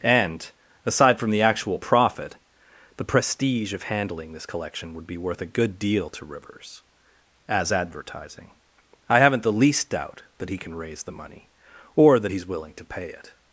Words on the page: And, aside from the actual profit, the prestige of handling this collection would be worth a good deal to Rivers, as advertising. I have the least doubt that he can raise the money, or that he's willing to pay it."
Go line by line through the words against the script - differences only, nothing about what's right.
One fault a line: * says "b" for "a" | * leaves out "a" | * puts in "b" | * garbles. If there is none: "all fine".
* says "haven't" for "have"